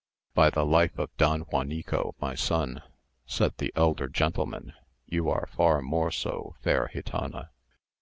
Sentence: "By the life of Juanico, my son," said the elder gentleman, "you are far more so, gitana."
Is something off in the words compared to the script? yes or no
yes